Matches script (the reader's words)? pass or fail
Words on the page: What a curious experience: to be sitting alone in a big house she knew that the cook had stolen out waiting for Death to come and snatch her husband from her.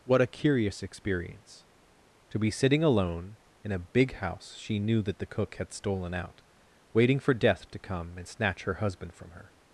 pass